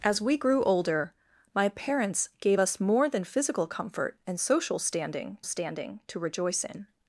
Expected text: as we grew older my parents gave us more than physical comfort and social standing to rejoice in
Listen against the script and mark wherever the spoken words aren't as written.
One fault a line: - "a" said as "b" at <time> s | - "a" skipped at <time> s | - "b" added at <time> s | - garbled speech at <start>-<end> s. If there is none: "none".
- "standing" added at 5.4 s